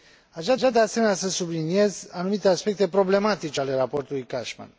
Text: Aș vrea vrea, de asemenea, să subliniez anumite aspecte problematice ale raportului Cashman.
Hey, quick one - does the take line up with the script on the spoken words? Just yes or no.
yes